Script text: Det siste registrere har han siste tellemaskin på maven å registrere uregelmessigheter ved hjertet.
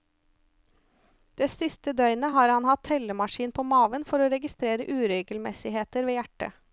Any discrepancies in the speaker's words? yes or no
yes